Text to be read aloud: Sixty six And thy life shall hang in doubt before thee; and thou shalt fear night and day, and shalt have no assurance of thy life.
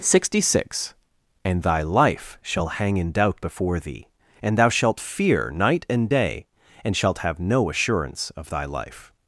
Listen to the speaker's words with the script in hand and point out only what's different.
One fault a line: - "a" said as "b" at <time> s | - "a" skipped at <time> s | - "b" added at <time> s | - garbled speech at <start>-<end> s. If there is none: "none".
none